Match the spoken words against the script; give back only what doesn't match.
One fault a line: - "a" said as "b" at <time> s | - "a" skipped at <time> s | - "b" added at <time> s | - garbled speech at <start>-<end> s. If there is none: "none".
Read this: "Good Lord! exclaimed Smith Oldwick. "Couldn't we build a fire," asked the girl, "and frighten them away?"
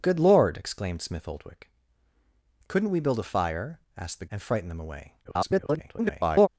- "girl" skipped at 4.3 s
- garbled speech at 5.2-6.5 s